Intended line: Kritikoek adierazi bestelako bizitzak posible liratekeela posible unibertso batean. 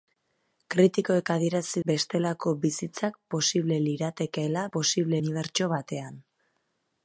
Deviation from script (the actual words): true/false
false